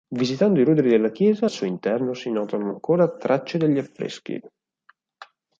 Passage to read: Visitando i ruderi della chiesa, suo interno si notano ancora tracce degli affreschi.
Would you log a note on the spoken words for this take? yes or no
no